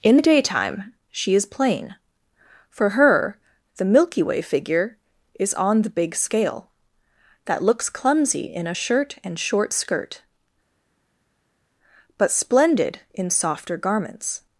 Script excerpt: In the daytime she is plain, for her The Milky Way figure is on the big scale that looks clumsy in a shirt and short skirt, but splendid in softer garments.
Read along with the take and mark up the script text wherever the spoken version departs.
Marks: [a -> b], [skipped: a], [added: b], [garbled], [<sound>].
In the daytime she is plain, for her The Milky Way figure is on the big scale that looks clumsy in a shirt and short skirt, but splendid in softer garments.